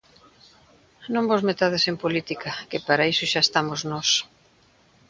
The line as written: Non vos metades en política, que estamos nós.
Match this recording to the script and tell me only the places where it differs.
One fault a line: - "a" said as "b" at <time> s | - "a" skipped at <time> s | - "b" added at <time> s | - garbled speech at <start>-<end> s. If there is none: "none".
- "para iso xa" added at 2.9 s